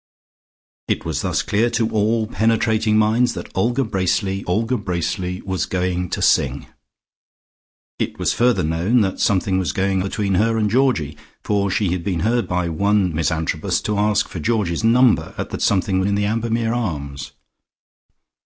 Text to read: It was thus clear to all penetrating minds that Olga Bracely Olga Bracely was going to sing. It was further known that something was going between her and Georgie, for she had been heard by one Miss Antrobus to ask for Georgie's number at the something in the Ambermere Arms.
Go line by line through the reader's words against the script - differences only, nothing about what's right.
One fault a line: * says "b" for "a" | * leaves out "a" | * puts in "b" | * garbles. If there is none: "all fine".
all fine